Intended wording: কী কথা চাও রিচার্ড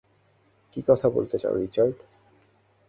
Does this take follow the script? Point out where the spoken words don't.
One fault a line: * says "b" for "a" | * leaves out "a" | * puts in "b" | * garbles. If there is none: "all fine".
* puts in "বলতে"